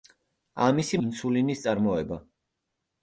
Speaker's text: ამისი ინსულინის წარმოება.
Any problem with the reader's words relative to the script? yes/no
no